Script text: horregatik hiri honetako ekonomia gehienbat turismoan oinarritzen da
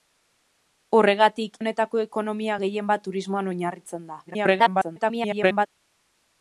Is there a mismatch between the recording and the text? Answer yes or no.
yes